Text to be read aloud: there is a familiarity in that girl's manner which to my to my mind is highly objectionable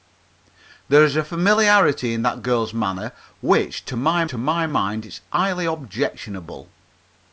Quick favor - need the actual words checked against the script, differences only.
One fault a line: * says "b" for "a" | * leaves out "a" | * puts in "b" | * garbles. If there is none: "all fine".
all fine